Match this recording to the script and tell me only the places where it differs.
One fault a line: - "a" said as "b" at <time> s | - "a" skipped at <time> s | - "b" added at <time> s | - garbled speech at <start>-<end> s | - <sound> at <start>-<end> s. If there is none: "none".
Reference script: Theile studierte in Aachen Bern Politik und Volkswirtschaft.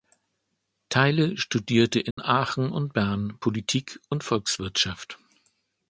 - dropout at 2.1-2.2 s
- "und" added at 2.7 s